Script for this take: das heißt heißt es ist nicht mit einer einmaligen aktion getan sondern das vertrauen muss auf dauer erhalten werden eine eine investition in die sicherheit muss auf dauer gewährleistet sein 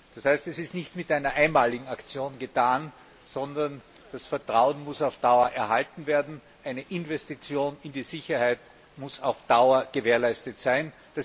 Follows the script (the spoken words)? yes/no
no